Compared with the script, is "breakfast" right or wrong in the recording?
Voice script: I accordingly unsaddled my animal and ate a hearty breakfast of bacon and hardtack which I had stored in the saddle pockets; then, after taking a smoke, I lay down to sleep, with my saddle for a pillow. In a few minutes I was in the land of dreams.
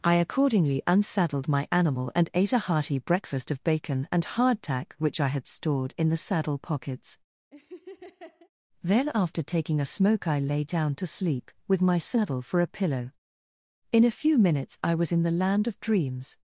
right